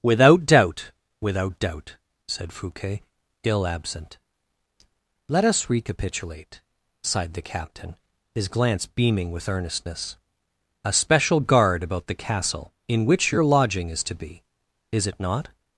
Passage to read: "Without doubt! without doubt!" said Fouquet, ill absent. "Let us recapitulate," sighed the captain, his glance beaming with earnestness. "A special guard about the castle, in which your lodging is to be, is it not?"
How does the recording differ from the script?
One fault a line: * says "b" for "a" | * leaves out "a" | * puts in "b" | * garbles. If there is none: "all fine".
all fine